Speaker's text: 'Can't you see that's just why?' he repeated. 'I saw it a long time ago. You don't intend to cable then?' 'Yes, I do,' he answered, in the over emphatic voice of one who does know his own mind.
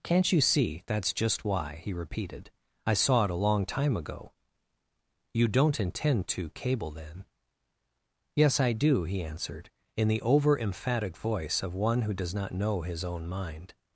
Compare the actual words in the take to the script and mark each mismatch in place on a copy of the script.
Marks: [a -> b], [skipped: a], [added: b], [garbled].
'Can't you see that's just why?' he repeated. 'I saw it a long time ago. You don't intend to cable then?' 'Yes, I do,' he answered, in the over emphatic voice of one who does [added: not] know his own mind.